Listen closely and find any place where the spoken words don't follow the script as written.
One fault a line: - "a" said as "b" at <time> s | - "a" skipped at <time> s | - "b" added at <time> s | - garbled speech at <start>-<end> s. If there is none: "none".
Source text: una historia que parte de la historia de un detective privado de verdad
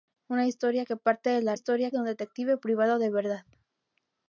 none